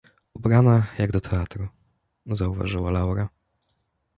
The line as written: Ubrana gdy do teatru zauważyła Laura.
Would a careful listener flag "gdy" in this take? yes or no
yes